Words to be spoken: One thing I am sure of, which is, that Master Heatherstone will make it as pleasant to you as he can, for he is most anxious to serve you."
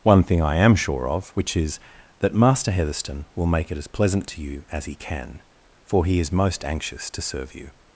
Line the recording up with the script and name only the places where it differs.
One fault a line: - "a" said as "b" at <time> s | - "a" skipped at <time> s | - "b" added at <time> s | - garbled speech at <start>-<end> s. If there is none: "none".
none